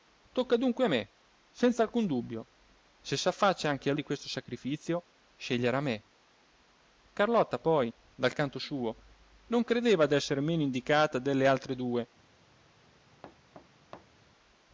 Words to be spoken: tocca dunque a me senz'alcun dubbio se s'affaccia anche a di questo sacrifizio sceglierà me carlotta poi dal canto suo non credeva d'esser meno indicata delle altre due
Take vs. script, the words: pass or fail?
pass